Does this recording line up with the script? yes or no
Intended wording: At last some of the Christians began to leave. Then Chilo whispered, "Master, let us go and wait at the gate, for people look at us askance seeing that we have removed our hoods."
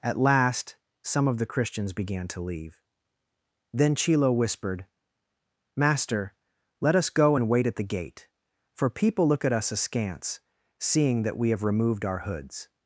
yes